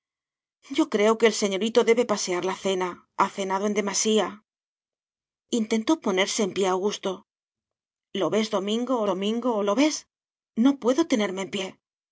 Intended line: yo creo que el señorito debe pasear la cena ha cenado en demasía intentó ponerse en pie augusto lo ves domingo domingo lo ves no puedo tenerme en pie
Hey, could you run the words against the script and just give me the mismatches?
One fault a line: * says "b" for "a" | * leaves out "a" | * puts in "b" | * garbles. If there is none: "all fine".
all fine